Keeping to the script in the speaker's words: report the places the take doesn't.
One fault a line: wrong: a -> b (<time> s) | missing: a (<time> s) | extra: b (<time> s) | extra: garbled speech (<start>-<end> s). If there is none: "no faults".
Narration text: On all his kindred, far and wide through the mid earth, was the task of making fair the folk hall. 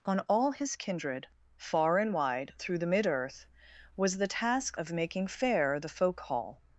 no faults